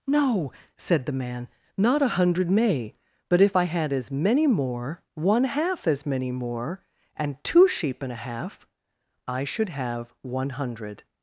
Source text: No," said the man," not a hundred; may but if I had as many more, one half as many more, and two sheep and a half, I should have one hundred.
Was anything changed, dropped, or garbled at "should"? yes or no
no